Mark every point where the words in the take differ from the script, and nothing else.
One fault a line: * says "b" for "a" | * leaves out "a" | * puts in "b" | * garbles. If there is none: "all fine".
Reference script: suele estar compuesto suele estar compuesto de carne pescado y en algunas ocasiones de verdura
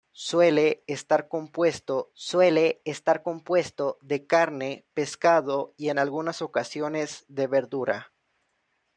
all fine